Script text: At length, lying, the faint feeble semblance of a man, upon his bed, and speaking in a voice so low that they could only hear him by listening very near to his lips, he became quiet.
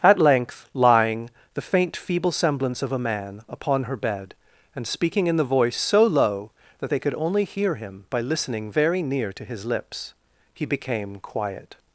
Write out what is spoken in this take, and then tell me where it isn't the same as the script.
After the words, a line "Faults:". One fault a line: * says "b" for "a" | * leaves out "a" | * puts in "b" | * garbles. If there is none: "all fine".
At length, lying, the faint feeble semblance of a man, upon her bed, and speaking in the voice so low that they could only hear him by listening very near to his lips, he became quiet.
Faults:
* says "her" for "his"
* says "the" for "a"